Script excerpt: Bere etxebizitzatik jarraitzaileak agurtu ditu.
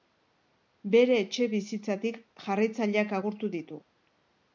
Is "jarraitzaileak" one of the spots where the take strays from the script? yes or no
no